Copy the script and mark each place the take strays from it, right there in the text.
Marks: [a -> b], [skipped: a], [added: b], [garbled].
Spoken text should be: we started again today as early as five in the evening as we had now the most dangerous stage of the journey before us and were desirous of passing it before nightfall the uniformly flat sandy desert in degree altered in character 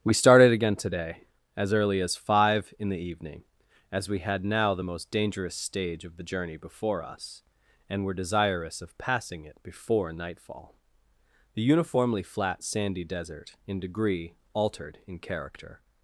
we started again today as early as five in the evening as we had now the most dangerous stage of the journey before us and were desirous of passing it before nightfall the uniformly flat sandy desert in degree altered in character